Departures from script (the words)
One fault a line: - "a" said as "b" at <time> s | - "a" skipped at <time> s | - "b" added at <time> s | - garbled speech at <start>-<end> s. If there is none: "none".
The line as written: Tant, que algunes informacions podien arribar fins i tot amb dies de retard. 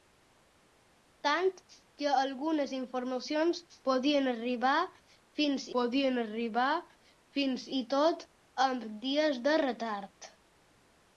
- "podien arribar fins" added at 5.8 s